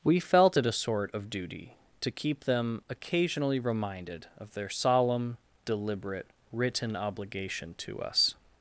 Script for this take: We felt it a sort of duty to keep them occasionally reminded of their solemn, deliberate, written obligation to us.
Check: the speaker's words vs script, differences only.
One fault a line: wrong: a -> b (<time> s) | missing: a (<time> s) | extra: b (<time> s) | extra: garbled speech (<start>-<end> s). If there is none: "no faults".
no faults